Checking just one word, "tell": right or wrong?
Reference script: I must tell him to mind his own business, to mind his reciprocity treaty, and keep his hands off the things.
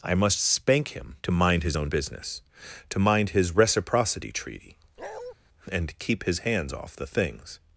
wrong